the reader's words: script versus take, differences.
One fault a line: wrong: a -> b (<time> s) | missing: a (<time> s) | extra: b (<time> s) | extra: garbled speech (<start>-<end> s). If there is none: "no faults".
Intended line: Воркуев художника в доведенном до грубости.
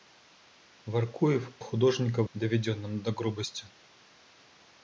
no faults